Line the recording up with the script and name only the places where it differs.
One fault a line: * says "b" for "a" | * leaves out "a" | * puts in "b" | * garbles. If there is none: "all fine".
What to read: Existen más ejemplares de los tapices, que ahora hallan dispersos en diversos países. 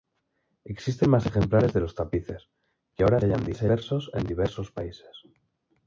all fine